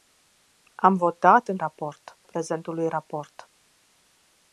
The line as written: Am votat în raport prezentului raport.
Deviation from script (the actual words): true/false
false